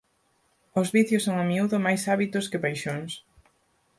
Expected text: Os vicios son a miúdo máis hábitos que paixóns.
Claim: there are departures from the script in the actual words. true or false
false